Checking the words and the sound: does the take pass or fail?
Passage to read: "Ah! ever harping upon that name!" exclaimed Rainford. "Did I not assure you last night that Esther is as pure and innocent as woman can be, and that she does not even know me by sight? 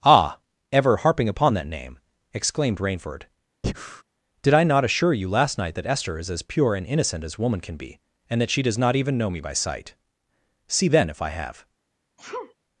fail